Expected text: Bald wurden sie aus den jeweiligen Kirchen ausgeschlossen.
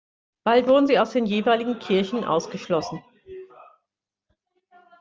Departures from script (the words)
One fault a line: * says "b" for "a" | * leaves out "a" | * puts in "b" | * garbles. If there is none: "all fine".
all fine